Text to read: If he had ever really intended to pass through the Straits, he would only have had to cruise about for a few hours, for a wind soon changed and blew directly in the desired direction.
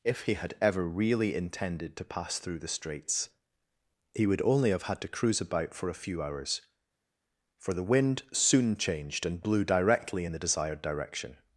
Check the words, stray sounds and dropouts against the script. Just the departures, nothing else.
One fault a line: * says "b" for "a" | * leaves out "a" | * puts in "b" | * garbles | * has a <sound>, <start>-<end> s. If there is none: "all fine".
* says "the" for "a"